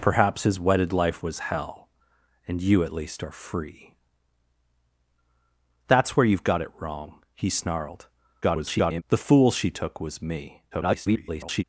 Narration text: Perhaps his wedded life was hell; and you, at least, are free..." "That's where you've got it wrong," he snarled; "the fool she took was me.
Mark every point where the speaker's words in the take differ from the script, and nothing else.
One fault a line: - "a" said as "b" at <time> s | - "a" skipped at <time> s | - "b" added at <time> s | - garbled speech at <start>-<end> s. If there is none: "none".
- garbled speech at 8.4-9.0 s
- garbled speech at 10.7-11.6 s